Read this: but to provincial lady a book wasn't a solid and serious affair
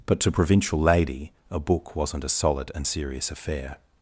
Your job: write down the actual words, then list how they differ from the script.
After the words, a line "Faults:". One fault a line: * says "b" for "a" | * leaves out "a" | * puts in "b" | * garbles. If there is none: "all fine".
but to provincial lady a book wasn't a solid and serious affair
Faults:
all fine